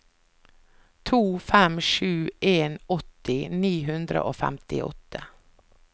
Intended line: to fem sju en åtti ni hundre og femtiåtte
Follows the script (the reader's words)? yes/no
yes